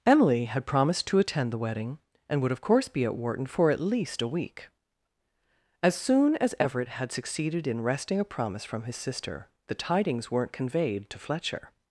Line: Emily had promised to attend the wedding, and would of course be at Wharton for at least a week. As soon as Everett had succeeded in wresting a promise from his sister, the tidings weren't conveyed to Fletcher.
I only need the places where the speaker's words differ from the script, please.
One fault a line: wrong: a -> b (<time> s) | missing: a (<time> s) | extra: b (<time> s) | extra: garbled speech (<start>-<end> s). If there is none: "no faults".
no faults